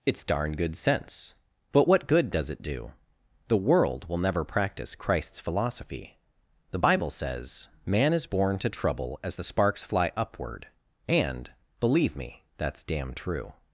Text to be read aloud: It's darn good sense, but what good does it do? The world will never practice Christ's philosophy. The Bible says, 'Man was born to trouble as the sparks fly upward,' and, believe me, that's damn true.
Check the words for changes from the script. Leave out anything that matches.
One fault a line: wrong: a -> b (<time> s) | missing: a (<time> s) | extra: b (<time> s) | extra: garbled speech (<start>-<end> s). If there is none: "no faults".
wrong: was -> is (8.1 s)